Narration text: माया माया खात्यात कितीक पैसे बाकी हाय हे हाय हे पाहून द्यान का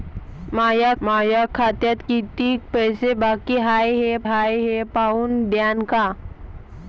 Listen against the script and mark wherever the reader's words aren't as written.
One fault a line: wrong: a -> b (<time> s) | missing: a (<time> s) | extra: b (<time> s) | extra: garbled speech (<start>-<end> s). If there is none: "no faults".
no faults